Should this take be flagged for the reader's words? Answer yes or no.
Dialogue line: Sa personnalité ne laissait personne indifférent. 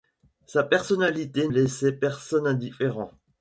yes